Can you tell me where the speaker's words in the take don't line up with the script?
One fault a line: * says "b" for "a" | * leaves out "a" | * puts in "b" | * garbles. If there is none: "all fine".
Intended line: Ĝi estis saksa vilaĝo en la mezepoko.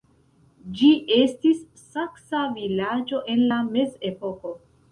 all fine